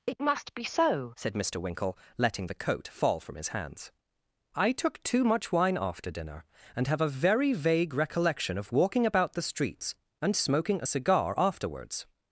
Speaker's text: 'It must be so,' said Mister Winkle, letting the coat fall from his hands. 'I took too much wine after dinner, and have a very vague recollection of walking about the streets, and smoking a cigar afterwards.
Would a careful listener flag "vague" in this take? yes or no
no